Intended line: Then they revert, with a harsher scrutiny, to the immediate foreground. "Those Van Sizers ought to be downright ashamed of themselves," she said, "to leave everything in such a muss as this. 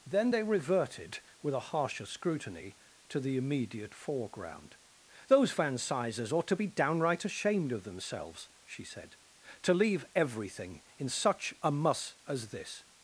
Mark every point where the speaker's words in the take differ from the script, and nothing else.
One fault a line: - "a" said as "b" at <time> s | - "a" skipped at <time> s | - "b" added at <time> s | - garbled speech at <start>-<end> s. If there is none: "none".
- "revert" said as "reverted" at 0.4 s